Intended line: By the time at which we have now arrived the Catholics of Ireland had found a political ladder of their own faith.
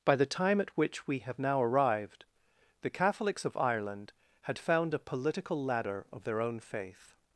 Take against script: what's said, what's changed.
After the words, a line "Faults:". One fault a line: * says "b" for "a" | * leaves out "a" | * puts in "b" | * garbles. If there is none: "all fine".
By the time at which we have now arrived the Catholics of Ireland had found a political ladder of their own faith.
Faults:
all fine